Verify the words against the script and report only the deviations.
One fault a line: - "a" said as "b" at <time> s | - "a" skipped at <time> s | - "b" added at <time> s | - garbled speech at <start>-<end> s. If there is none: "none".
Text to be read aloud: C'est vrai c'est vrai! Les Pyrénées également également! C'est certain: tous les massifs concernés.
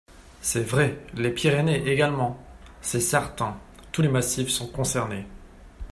- "c'est vrai" skipped at 1.0 s
- "également" skipped at 2.4 s
- "sont" added at 4.5 s